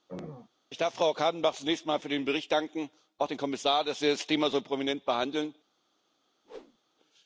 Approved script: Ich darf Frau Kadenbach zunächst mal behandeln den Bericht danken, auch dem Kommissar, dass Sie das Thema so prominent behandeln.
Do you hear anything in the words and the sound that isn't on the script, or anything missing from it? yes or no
yes